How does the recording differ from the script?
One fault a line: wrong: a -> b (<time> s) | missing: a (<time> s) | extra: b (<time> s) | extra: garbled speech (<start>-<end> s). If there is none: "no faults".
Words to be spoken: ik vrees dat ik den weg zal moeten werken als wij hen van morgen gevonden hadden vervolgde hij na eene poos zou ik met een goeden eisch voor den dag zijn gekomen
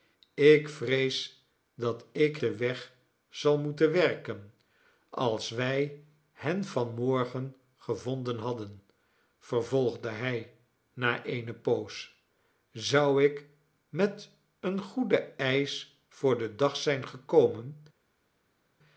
no faults